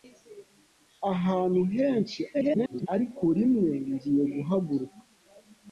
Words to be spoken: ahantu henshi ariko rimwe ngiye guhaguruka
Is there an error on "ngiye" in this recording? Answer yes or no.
no